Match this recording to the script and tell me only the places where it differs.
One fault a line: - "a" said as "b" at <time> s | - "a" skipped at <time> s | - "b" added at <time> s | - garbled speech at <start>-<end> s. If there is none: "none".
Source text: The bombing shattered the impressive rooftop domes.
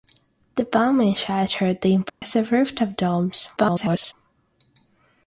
- garbled speech at 3.6-4.1 s